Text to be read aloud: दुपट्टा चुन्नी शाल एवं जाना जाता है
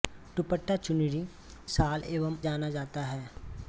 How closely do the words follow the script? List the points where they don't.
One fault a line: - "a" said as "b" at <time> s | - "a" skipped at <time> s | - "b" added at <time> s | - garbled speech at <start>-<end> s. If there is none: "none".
none